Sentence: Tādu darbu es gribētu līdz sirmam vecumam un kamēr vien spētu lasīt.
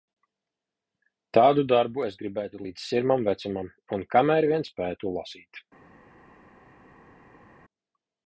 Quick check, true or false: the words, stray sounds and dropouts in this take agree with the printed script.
true